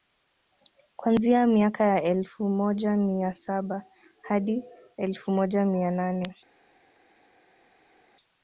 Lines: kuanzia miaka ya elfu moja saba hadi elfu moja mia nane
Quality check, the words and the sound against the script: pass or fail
fail